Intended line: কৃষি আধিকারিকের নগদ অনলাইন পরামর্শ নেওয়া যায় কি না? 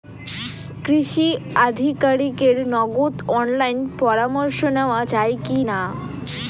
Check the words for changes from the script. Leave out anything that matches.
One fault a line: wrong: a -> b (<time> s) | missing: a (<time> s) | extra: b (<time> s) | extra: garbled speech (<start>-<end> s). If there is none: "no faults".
no faults